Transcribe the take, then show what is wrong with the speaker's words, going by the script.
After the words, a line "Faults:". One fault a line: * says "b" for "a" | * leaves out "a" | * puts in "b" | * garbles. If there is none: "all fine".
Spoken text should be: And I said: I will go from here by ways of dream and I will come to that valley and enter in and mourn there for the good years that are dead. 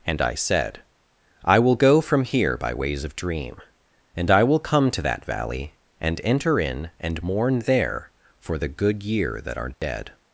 And I said: I will go from here by ways of dream and I will come to that valley and enter in and mourn there for the good year that are dead.
Faults:
* says "year" for "years"